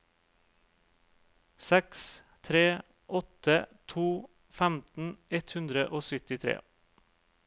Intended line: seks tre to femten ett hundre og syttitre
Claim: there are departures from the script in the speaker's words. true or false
true